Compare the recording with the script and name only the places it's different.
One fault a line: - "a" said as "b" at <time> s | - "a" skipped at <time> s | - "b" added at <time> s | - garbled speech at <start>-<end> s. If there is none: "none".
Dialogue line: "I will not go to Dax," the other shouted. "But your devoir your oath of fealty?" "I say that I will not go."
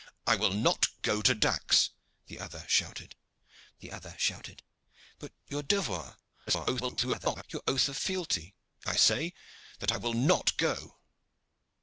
- "the other shouted" added at 3.8 s
- garbled speech at 6.5-7.4 s